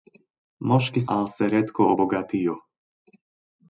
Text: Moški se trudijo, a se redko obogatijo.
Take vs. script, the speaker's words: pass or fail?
fail